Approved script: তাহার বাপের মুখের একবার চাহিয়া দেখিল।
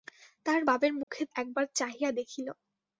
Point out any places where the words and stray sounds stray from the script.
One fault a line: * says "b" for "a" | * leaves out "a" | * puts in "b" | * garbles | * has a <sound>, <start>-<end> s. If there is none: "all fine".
* has a dropout, 1.0-1.1 s